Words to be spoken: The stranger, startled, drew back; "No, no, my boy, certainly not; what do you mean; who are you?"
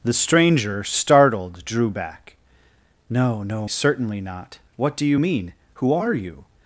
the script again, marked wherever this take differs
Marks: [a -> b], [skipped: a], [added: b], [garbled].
The stranger, startled, drew back; "No, no, [skipped: my boy,] certainly not; what do you mean; who are you?"